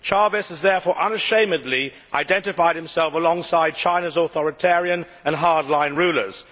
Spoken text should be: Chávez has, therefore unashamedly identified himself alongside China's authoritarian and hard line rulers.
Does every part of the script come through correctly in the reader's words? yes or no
yes